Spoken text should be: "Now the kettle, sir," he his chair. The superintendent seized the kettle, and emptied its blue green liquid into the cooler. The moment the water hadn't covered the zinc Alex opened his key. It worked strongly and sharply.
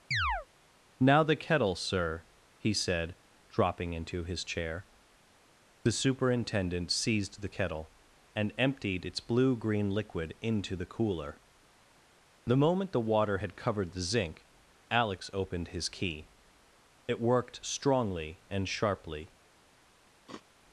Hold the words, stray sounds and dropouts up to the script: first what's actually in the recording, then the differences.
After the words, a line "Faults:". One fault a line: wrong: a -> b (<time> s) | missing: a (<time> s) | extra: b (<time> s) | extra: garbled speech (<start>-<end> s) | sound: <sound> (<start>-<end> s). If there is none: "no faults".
"Now the kettle, sir," he said, dropping into his chair. The superintendent seized the kettle, and emptied its blue green liquid into the cooler. The moment the water had covered the zinc Alex opened his key. It worked strongly and sharply.
Faults:
sound: chirp (0.1-0.5 s)
extra: said dropping into (2.7 s)
wrong: hadn't -> had (13.4 s)
sound: sniff (20.3-20.4 s)